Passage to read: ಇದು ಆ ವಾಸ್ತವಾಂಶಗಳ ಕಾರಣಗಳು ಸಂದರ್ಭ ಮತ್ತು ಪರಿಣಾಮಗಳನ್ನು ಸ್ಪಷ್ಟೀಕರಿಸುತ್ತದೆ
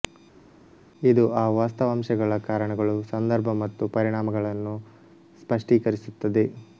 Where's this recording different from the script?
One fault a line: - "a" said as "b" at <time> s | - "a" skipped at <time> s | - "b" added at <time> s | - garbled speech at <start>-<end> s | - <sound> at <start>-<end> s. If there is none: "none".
none